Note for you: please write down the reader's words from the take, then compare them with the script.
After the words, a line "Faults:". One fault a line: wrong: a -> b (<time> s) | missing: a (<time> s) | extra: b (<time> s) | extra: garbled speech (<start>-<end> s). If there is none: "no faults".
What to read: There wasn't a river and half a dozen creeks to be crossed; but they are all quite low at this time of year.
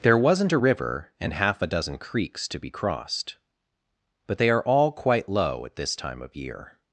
There wasn't a river and half a dozen creeks to be crossed; but they are all quite low at this time of year.
Faults:
no faults